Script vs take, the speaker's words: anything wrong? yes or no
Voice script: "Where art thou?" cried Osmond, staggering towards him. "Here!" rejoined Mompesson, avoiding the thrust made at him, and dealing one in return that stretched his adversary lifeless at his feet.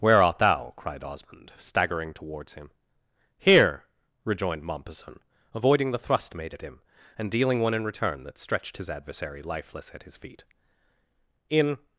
yes